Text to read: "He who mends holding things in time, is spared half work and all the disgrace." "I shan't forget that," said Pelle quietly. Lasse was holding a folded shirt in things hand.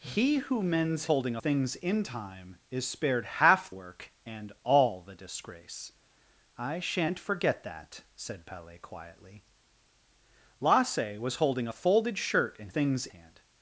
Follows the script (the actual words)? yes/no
yes